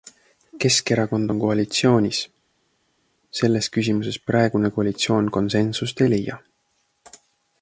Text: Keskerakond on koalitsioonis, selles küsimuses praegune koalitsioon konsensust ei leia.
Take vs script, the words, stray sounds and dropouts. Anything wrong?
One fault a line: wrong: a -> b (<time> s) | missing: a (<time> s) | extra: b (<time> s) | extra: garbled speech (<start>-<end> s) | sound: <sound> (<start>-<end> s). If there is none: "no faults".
no faults